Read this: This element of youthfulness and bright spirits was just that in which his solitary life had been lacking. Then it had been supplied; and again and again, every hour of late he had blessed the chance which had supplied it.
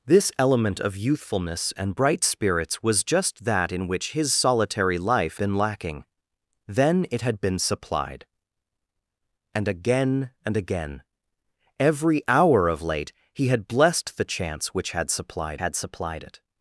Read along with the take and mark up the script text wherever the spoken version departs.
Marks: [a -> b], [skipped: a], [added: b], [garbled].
This element of youthfulness and bright spirits was just that in which his solitary life [skipped: had] been lacking. Then it had been supplied; and again and again, every hour of late he had blessed the chance which had supplied [added: had supplied] it.